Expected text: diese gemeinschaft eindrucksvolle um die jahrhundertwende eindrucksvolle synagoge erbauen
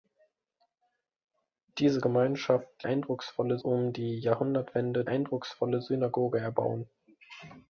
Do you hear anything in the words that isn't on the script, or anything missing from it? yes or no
no